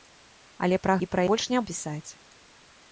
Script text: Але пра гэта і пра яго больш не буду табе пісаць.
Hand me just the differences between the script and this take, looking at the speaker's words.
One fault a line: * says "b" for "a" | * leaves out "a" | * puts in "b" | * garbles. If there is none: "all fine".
* leaves out "гэта"
* leaves out "яго"
* leaves out "буду табе"